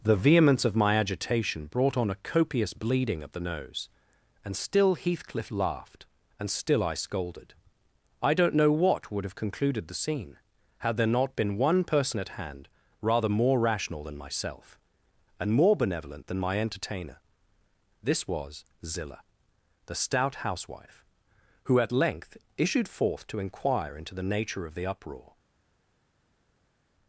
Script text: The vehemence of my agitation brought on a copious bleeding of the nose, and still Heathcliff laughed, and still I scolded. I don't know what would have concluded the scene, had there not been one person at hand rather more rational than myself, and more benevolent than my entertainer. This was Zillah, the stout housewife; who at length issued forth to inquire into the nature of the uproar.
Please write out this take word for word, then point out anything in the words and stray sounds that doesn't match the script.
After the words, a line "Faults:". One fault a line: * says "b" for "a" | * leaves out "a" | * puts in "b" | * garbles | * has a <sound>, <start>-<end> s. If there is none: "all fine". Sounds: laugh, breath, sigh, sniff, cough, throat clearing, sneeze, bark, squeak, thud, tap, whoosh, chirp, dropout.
The vehemence of my agitation brought on a copious bleeding of the nose, and still Heathcliff laughed, and still I scolded. I don't know what would have concluded the scene, had there not been one person at hand rather more rational than myself, and more benevolent than my entertainer. This was Zillah, the stout housewife; who at length issued forth to inquire into the nature of the uproar.
Faults:
all fine